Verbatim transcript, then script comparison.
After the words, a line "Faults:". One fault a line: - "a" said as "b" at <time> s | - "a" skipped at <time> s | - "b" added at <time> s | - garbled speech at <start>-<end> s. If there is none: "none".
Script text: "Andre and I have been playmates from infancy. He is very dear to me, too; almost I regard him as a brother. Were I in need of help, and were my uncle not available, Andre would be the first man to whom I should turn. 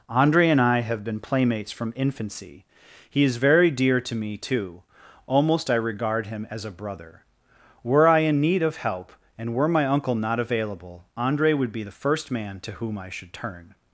"Andre and I have been playmates from infancy. He is very dear to me, too; almost I regard him as a brother. Were I in need of help, and were my uncle not available, Andre would be the first man to whom I should turn.
Faults:
none